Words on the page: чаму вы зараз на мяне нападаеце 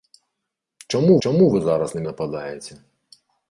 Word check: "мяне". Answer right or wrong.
wrong